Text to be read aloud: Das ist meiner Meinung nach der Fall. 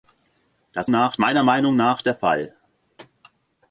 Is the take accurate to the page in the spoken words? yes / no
no